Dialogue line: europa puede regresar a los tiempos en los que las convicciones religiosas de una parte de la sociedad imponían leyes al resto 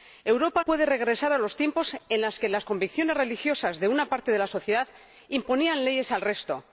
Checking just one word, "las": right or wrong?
right